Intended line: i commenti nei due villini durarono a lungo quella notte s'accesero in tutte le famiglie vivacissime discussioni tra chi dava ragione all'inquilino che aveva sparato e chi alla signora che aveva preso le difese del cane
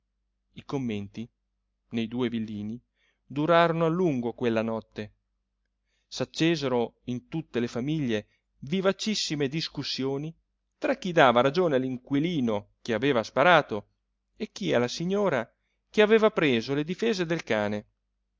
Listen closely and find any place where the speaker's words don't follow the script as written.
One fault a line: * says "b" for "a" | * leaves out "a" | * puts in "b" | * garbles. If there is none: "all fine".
all fine